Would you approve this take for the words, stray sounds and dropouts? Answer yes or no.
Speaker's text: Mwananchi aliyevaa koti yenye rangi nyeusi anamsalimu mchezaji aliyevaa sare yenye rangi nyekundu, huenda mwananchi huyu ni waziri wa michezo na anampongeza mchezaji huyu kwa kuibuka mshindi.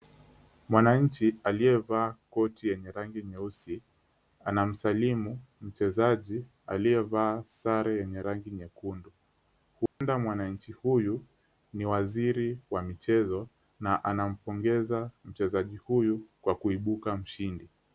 no